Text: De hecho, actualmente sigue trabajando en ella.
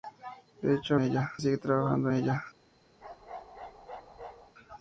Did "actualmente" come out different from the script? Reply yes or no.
yes